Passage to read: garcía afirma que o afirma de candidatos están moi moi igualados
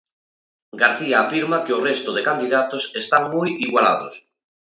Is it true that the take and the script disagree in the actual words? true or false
true